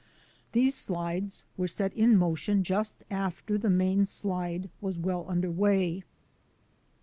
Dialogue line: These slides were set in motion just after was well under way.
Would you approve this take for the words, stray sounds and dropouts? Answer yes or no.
no